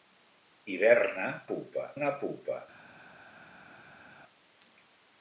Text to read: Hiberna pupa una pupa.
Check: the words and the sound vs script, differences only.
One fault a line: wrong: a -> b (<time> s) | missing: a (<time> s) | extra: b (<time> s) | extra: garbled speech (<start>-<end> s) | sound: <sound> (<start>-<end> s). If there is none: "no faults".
no faults